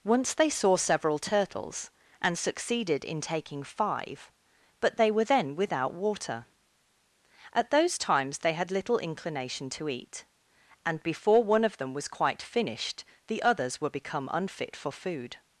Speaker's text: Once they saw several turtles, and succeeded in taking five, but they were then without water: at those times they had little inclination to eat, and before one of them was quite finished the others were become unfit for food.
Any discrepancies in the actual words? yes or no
no